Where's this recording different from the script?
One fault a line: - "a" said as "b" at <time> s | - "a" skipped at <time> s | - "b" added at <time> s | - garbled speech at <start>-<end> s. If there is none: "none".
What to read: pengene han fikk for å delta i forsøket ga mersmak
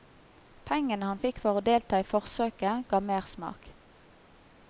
none